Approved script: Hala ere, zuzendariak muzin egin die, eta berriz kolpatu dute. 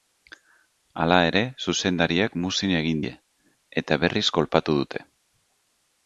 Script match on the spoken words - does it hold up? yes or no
yes